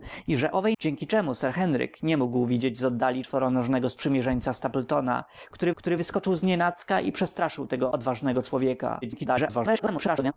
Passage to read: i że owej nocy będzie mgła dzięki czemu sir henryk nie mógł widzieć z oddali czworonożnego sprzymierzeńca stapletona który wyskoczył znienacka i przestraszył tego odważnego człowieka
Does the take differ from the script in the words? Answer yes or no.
yes